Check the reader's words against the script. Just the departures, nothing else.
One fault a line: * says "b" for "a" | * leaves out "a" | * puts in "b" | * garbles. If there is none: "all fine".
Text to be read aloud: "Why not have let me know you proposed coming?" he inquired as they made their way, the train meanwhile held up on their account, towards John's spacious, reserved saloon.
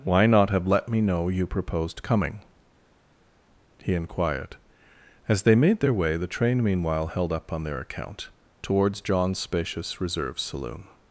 * says "reserve" for "reserved"